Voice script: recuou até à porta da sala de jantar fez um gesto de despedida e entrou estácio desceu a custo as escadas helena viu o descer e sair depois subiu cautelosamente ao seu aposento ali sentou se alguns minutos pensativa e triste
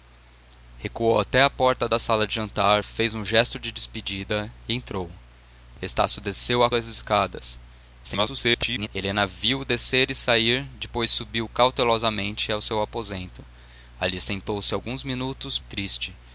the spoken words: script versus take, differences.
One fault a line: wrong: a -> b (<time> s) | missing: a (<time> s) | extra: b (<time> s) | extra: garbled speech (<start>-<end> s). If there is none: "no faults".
missing: custo (6.7 s)
extra: garbled speech (8.0-8.9 s)
missing: pensativa (15.6 s)